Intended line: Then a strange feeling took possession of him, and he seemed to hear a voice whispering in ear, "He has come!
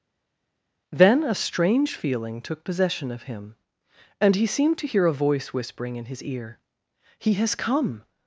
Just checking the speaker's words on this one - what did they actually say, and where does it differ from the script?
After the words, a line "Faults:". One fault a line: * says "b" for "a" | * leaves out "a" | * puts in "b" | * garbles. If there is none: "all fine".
Then a strange feeling took possession of him, and he seemed to hear a voice whispering in his ear, "He has come!
Faults:
* puts in "his"